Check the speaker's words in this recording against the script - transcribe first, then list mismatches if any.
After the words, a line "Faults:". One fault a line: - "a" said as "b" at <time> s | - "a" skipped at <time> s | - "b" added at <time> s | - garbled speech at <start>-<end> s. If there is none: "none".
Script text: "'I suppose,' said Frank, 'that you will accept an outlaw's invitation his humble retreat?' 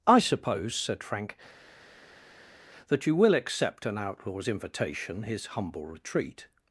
"'I suppose,' said Frank, 'that you will accept an outlaw's invitation his humble retreat?'
Faults:
none